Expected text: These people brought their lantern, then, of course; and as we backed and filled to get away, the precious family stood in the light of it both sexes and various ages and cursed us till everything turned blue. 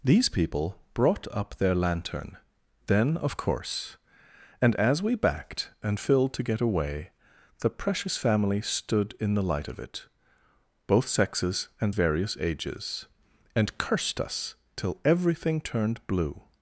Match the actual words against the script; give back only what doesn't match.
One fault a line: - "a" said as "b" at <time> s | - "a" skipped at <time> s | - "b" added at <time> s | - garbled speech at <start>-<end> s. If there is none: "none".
- "up" added at 1.3 s